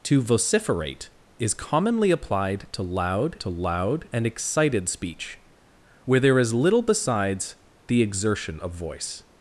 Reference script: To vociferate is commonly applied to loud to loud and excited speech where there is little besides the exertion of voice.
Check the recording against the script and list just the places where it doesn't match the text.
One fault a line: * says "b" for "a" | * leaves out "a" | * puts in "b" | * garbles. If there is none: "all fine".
all fine